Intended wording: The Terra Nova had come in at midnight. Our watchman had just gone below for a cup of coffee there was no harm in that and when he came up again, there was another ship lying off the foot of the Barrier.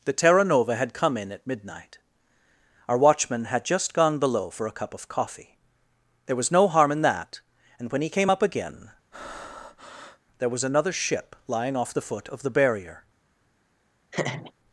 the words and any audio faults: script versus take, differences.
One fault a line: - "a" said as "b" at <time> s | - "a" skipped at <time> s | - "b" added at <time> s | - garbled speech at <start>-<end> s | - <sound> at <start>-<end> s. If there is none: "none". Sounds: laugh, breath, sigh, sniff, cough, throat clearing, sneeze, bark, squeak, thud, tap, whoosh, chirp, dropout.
- breath at 9.1-10.2 s
- laugh at 14.1-14.5 s